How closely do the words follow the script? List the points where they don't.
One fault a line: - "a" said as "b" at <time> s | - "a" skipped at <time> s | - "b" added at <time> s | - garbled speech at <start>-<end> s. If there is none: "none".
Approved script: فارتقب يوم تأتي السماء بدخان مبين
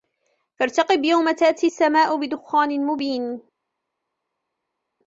none